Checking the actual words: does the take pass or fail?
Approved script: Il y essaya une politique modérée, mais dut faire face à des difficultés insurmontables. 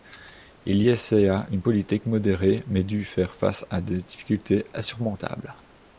pass